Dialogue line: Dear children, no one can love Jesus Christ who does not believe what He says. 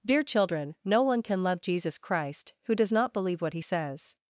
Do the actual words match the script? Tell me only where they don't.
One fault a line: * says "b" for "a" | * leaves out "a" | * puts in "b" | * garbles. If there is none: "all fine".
all fine